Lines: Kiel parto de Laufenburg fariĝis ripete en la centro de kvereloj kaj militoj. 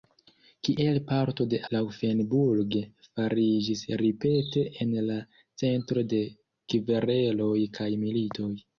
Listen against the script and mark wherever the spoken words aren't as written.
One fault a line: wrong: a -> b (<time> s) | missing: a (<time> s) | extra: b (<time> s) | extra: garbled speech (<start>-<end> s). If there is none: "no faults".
no faults